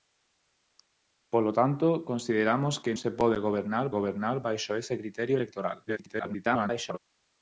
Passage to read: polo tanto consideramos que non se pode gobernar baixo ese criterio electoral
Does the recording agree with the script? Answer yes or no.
no